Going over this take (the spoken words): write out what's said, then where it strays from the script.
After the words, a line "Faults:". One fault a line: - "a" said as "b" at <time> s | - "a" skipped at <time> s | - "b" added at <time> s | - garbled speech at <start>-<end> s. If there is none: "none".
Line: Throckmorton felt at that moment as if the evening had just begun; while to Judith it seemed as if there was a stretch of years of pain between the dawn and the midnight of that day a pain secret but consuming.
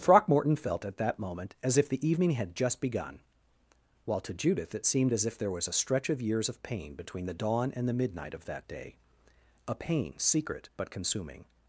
Throckmorton felt at that moment as if the evening had just begun; while to Judith it seemed as if there was a stretch of years of pain between the dawn and the midnight of that day a pain secret but consuming.
Faults:
none